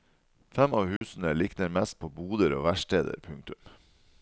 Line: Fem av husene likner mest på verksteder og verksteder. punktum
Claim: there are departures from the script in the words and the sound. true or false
true